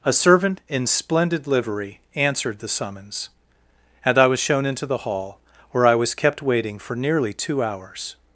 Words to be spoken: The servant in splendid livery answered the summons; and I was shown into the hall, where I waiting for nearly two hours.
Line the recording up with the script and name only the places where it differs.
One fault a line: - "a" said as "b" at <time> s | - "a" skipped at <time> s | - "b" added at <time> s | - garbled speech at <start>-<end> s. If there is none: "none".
- "The" said as "A" at 0.0 s
- "was kept" added at 5.9 s